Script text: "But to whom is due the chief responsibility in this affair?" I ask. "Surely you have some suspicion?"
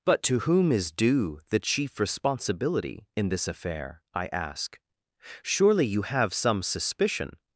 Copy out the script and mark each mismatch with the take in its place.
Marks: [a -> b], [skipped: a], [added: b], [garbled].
"But to whom is due the chief responsibility in this affair?" I ask. "Surely you have some suspicion?"